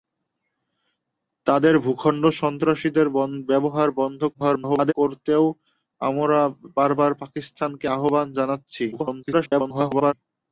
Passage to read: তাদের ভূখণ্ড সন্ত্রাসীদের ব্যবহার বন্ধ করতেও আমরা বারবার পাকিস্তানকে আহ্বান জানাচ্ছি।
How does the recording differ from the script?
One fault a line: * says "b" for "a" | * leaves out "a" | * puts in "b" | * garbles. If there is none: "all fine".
* garbles
* garbles